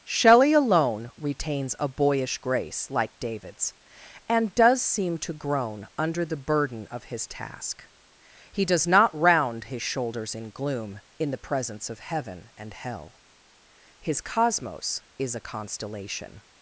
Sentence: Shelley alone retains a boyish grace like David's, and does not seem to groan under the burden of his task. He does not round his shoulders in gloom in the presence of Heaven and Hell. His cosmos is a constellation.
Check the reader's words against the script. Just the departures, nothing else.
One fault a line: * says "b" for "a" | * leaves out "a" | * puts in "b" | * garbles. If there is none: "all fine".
* leaves out "not"